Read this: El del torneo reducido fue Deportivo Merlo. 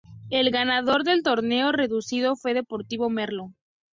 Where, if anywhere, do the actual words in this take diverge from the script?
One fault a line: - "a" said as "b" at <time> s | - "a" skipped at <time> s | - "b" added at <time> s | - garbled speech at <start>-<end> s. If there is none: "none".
- "ganador" added at 0.5 s